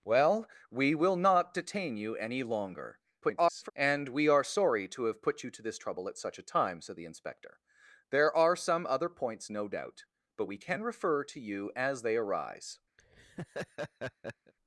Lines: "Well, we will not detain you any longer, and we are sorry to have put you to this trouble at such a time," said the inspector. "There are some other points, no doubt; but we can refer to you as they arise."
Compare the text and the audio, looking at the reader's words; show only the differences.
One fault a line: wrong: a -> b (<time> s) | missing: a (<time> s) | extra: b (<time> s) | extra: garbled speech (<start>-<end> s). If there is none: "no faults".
extra: garbled speech (3.2-3.7 s)